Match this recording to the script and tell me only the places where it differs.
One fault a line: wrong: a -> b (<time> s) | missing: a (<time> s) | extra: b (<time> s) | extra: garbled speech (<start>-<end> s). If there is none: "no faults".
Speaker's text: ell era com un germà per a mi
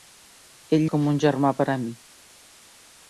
missing: era (0.9 s)